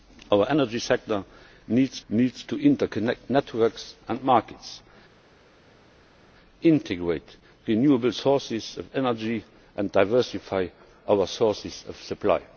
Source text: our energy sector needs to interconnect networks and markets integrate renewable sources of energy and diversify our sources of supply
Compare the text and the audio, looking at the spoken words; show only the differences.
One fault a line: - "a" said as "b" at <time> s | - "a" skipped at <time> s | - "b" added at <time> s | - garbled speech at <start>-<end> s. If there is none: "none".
- "needs" added at 2.1 s